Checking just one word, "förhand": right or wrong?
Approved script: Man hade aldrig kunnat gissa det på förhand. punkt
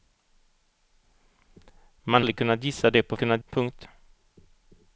wrong